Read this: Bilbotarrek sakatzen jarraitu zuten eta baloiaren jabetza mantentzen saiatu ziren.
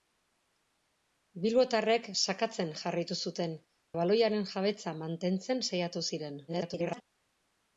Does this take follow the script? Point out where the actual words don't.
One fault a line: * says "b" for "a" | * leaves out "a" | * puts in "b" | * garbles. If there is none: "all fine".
* leaves out "eta"
* garbles